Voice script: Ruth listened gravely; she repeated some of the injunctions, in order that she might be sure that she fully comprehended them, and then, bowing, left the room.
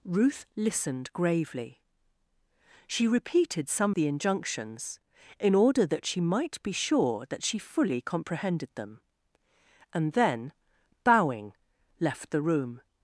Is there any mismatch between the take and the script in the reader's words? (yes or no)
yes